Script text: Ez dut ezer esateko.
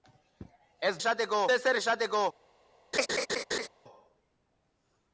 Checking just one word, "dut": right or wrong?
wrong